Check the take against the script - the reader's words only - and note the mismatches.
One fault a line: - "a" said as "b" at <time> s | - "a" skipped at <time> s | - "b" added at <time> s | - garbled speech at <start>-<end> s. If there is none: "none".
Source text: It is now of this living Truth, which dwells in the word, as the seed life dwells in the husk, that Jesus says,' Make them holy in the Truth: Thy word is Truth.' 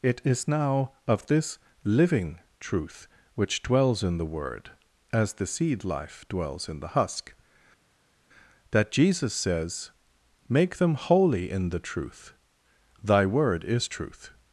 none